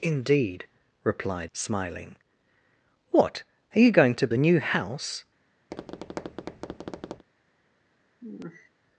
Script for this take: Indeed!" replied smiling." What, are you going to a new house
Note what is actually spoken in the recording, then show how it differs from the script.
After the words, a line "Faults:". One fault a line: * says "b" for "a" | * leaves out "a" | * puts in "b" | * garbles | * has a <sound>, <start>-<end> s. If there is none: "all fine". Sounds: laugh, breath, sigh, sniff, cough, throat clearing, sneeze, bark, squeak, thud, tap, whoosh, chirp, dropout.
Indeed!" replied smiling." What, are you going to a new house
Faults:
* has a tap, 5.7-7.2 s
* has a sigh, 8.2-8.7 s